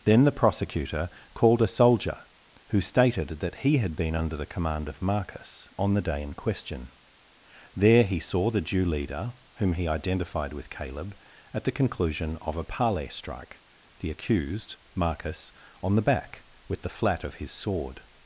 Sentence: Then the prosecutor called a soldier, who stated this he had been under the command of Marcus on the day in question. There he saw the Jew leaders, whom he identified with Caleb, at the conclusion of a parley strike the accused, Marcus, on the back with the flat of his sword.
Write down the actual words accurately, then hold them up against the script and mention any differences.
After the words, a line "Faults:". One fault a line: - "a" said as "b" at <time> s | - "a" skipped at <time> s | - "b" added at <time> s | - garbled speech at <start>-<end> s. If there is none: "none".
Then the prosecutor called a soldier, who stated that he had been under the command of Marcus on the day in question. There he saw the Jew leader, whom he identified with Caleb, at the conclusion of a parley strike the accused, Marcus, on the back with the flat of his sword.
Faults:
- "this" said as "that" at 3.4 s
- "leaders" said as "leader" at 8.8 s